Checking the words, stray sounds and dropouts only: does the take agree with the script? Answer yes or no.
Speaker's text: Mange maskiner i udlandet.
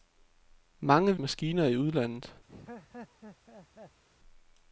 no